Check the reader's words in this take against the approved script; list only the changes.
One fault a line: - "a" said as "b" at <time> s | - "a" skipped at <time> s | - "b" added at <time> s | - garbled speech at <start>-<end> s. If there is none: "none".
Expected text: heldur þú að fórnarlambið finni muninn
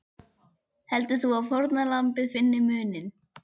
none